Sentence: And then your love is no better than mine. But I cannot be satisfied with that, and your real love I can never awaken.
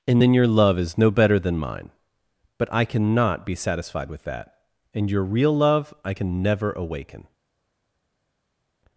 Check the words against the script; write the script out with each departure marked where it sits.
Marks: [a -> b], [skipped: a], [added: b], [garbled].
And then your love is no better than mine. But I cannot be satisfied with that, and your real love I can never awaken.